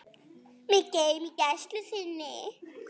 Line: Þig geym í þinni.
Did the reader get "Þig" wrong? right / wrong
wrong